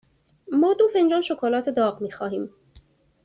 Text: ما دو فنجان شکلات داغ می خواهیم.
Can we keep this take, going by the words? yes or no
yes